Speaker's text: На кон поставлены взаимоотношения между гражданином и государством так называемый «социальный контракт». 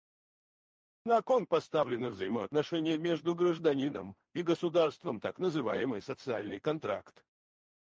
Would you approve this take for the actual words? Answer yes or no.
yes